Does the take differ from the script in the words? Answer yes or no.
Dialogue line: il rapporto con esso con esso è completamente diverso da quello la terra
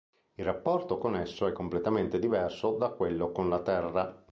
yes